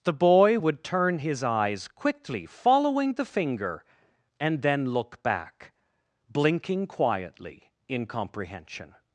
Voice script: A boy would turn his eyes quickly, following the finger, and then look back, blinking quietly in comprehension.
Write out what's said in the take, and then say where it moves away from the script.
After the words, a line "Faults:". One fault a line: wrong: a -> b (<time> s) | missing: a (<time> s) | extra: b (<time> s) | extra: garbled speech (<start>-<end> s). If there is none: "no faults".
The boy would turn his eyes quickly, following the finger, and then look back, blinking quietly in comprehension.
Faults:
wrong: A -> The (0.0 s)